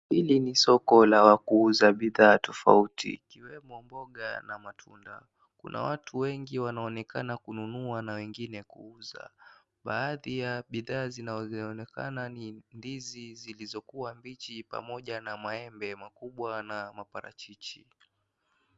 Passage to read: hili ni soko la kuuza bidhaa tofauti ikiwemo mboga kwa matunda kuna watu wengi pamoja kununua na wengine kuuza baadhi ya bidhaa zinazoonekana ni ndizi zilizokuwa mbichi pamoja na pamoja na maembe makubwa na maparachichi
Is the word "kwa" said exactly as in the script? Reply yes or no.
no